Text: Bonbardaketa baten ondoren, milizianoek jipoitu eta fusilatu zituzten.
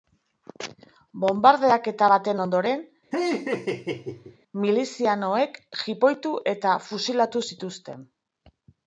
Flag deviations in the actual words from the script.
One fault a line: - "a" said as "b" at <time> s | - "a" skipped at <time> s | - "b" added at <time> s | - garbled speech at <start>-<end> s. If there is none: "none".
none